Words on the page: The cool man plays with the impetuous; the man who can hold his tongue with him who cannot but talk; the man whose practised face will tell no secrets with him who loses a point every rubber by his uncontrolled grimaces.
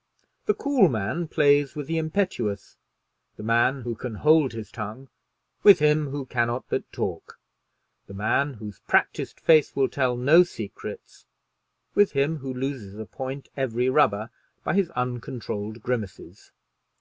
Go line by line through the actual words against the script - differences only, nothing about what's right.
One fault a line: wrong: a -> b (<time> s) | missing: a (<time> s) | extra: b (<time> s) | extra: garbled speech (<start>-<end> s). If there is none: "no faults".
no faults